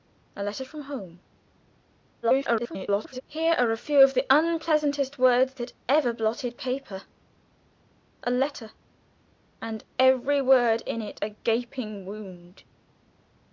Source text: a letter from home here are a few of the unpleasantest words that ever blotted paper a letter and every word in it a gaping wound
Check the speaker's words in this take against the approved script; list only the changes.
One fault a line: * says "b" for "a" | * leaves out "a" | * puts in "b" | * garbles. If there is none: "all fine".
* garbles